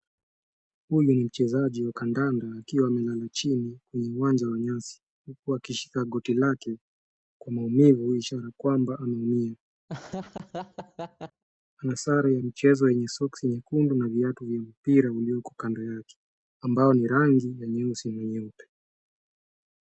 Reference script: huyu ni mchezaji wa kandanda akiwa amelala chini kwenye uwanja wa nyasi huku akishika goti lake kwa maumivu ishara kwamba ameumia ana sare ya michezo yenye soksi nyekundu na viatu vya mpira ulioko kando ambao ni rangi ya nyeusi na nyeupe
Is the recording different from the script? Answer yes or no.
yes